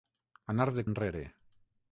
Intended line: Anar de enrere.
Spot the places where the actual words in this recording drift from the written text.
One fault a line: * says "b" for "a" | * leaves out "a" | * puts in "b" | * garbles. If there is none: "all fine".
all fine